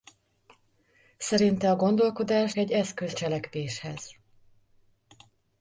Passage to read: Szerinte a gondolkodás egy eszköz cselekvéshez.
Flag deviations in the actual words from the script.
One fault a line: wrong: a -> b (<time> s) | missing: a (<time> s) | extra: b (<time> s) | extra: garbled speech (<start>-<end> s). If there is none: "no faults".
no faults